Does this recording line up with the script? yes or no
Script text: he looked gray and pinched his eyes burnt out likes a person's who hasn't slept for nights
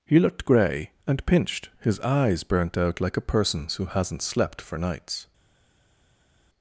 no